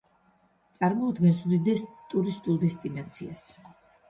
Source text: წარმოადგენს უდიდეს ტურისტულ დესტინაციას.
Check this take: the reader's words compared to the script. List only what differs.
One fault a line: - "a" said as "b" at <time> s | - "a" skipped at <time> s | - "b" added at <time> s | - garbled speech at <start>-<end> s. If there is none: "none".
none